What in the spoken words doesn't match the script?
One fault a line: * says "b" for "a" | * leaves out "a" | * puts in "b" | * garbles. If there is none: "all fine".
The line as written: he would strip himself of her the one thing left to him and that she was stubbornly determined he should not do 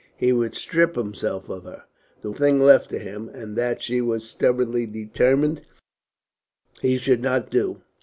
* leaves out "one"